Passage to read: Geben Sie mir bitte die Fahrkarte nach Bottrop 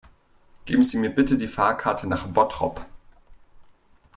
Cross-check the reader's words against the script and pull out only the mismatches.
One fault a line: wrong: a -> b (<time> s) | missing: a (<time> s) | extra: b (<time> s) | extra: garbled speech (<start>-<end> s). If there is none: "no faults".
no faults